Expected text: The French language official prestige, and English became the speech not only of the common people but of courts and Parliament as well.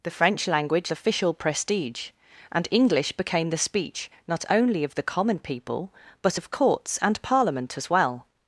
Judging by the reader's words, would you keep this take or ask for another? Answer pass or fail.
pass